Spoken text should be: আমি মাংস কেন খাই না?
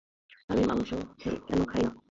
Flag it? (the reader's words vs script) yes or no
no